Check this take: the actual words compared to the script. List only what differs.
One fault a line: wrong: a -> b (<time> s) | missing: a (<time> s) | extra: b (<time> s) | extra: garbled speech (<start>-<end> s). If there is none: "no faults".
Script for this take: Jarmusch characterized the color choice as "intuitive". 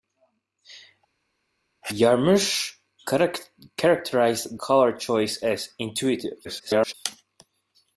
missing: the (4.6 s)
extra: garbled speech (6.4-6.9 s)